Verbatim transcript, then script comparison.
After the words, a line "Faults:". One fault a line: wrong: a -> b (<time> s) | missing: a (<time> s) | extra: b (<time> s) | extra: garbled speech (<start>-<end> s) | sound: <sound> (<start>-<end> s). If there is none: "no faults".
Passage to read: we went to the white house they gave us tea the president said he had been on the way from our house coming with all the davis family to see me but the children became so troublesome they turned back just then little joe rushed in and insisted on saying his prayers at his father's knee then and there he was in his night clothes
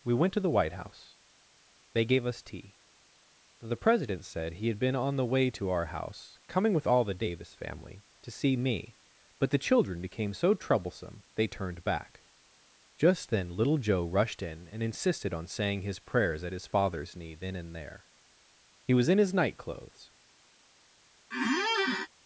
we went to the white house they gave us tea the president said he had been on the way to our house coming with all the davis family to see me but the children became so troublesome they turned back just then little joe rushed in and insisted on saying his prayers at his father's knee then and there he was in his night clothes
Faults:
wrong: from -> to (5.5 s)
sound: squeak (21.3-22.1 s)